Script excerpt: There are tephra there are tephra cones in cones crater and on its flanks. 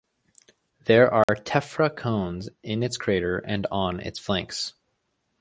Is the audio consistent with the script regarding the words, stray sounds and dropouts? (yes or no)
no